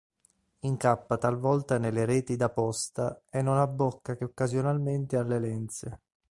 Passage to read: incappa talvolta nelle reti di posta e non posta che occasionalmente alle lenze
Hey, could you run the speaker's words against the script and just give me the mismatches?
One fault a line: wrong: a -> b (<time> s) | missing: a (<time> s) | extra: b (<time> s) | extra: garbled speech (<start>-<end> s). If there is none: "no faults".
wrong: di -> da (2.4 s)
wrong: posta -> abbocca (3.6 s)